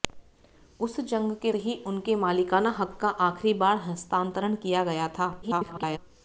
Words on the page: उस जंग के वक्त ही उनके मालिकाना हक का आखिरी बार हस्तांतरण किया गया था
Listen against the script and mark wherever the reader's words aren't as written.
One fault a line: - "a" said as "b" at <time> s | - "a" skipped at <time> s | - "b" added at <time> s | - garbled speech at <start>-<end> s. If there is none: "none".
- "वक्त" skipped at 1.5 s
- garbled speech at 5.4-6.0 s